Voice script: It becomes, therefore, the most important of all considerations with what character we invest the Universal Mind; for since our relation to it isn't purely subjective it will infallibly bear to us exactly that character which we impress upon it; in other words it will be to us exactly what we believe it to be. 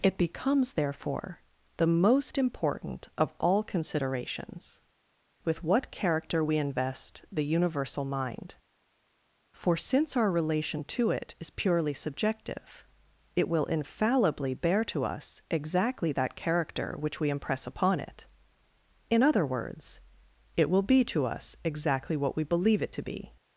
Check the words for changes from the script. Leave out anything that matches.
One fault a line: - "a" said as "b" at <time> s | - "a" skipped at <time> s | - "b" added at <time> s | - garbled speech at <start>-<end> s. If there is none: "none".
- "isn't" said as "is" at 11.4 s